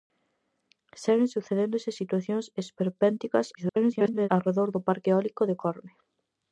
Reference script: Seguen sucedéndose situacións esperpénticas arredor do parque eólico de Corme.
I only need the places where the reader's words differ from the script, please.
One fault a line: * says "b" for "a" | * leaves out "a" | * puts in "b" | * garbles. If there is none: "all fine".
* garbles